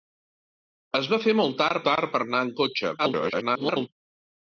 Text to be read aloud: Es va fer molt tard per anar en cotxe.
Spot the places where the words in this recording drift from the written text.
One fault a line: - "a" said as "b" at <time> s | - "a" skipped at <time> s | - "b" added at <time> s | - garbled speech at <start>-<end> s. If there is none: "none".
- "tard" added at 1.9 s
- garbled speech at 3.0-3.9 s